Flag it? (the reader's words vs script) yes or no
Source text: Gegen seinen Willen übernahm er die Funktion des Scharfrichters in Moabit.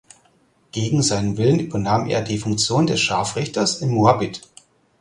no